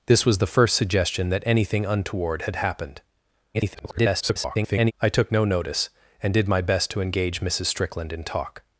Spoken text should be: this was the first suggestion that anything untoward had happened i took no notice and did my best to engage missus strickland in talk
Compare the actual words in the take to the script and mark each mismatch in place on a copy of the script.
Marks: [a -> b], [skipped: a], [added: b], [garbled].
this was the first suggestion that anything untoward had happened [garbled] i took no notice and did my best to engage missus strickland in talk